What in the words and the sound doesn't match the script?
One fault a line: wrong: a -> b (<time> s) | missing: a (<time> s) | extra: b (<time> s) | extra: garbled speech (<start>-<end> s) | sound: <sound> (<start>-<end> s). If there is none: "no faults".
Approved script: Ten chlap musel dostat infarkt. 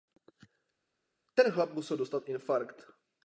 no faults